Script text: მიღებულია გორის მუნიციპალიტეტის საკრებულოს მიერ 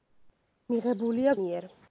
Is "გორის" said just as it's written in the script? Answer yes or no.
no